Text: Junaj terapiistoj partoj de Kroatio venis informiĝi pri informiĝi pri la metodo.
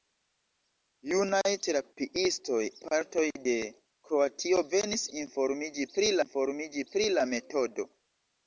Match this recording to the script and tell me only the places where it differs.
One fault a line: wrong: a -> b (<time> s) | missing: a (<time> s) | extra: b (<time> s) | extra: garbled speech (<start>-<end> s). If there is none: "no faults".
no faults